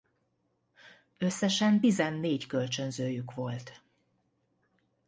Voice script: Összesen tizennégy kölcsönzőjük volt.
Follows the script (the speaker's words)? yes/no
yes